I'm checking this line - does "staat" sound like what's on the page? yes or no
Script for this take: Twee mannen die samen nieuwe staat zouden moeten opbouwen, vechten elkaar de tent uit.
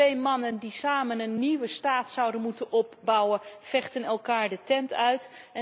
yes